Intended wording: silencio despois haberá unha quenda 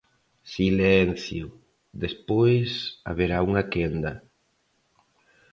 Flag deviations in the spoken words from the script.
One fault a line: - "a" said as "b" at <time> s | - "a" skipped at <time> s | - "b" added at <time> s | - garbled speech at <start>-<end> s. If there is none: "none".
none